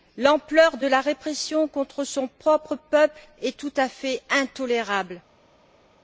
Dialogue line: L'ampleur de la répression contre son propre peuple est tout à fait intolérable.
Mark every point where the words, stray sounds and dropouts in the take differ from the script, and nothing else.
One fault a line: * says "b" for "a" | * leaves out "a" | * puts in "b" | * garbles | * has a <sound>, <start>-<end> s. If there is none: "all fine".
all fine